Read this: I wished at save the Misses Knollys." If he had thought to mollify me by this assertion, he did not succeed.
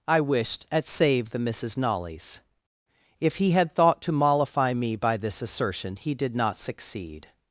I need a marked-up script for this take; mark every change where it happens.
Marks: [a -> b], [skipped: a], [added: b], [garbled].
I wished at save the Misses Knollys." If he had thought to mollify me by this assertion, he did not succeed.